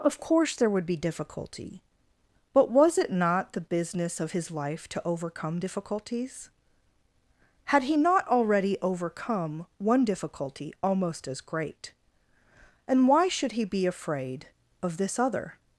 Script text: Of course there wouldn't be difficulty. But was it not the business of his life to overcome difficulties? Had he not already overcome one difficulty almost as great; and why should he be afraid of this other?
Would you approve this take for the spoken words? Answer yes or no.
no